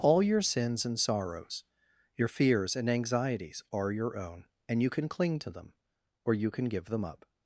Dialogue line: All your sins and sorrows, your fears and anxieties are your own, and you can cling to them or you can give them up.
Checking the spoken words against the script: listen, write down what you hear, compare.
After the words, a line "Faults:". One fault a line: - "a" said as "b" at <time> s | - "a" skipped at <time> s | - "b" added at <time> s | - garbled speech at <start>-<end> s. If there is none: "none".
All your sins and sorrows, your fears and anxieties are your own, and you can cling to them or you can give them up.
Faults:
none